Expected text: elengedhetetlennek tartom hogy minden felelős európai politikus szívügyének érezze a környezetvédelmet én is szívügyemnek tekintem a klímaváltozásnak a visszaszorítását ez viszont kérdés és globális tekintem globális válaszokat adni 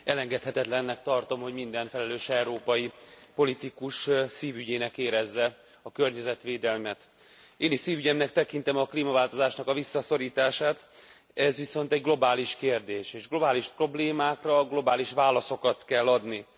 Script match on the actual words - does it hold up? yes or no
no